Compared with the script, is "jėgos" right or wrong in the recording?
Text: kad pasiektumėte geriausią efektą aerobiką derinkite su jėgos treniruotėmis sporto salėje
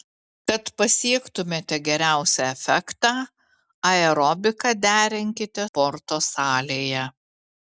wrong